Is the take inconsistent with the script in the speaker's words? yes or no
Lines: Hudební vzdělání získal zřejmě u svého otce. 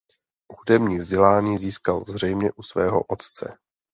no